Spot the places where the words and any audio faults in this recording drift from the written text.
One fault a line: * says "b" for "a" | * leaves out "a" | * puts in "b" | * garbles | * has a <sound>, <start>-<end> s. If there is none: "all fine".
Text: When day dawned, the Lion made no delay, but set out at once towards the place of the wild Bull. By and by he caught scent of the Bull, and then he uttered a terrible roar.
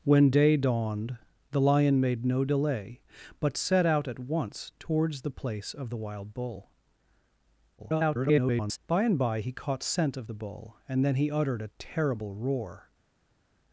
* garbles